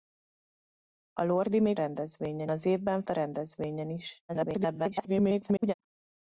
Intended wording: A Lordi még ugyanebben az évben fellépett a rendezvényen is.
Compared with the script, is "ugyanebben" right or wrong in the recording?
wrong